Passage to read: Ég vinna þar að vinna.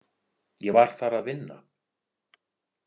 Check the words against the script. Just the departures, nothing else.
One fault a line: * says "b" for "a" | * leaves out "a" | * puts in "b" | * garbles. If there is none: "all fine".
* says "var" for "vinna"